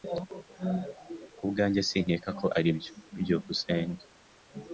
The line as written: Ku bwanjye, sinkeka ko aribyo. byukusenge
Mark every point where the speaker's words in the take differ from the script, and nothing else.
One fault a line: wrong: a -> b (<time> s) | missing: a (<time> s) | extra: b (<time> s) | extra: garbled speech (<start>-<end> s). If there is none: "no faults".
no faults